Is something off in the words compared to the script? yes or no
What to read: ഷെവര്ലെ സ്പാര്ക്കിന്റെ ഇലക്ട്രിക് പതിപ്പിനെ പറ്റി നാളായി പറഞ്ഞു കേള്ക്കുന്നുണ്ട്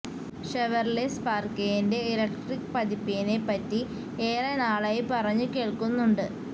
yes